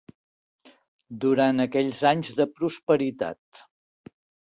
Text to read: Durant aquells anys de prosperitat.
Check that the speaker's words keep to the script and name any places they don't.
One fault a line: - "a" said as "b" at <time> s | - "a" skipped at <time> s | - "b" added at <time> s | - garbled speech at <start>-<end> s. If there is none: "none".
none